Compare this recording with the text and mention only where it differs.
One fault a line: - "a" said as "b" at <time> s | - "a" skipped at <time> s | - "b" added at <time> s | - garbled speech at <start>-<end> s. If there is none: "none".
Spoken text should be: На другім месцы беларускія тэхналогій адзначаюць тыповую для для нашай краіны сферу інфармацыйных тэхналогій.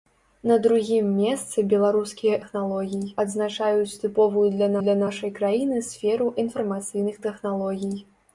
none